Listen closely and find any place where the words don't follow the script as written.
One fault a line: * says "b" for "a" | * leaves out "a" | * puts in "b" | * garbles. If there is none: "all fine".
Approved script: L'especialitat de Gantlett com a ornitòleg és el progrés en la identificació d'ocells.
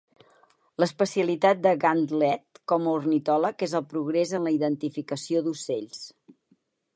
all fine